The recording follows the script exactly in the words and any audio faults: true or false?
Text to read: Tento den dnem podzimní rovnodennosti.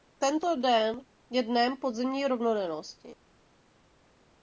false